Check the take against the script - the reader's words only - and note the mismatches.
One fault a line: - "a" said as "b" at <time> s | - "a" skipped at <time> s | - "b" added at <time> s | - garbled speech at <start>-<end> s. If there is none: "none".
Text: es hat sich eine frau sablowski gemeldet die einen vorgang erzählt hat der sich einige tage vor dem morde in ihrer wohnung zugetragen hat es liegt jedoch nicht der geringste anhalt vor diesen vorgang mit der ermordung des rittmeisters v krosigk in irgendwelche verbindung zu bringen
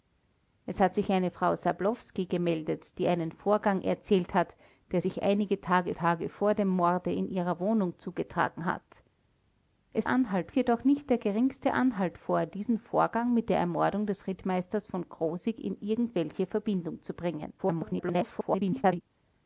- "tage" added at 5.9 s
- "liegt" said as "anhalt" at 10.1 s
- garbled speech at 17.6-19.0 s